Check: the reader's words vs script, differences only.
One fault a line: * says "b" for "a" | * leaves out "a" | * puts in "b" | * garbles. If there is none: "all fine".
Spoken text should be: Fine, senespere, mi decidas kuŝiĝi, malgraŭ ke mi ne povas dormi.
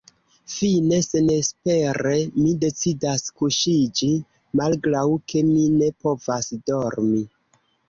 all fine